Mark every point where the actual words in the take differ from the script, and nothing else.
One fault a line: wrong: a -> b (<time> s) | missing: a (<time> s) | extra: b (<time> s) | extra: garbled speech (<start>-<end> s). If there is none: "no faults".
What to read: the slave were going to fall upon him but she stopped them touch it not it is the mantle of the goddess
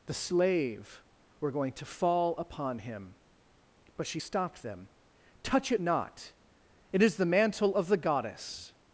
no faults